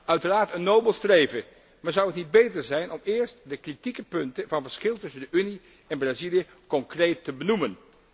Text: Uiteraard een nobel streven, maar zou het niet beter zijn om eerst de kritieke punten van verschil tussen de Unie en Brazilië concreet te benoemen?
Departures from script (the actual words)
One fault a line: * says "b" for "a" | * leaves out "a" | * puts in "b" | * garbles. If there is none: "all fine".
all fine